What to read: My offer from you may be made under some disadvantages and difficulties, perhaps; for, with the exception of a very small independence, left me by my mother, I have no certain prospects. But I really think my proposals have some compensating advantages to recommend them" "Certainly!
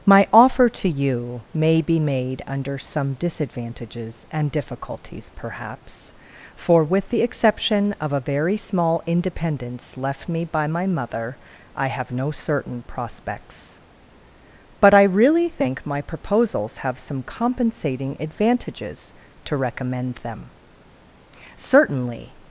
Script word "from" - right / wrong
wrong